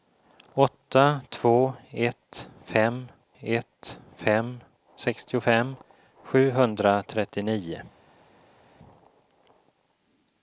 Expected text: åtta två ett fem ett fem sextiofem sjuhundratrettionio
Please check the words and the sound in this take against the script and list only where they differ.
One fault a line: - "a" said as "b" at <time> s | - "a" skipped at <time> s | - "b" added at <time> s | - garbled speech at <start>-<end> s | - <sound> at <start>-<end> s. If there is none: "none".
none